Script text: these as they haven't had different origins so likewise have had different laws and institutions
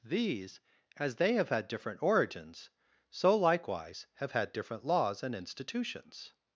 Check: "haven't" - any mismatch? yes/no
yes